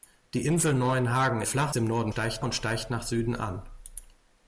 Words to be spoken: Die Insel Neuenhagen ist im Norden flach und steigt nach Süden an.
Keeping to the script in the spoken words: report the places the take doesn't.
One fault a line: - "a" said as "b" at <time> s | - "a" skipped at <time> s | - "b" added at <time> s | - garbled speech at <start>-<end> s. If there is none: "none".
- "ist" said as "flach" at 1.4 s
- "flach" said as "steigt" at 2.1 s